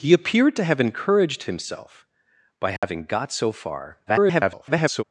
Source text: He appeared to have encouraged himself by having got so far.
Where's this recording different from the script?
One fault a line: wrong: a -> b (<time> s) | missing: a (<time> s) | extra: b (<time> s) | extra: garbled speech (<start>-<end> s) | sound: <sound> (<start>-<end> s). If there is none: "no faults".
sound: dropout (2.8-2.8 s)
extra: garbled speech (4.1-5.0 s)